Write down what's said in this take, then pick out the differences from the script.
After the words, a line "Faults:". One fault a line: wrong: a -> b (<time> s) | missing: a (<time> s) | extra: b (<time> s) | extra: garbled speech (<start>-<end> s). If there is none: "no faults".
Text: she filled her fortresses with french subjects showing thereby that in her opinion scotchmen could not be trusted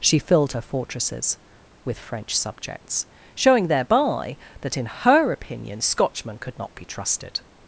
she filled her fortresses with french subjects showing thereby that in her opinion scotchmen could not be trusted
Faults:
no faults